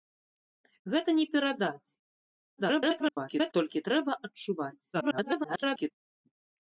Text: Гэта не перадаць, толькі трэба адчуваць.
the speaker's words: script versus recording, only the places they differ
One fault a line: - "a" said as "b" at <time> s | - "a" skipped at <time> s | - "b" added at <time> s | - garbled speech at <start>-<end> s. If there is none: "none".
- garbled speech at 2.6-3.5 s
- garbled speech at 4.9-5.9 s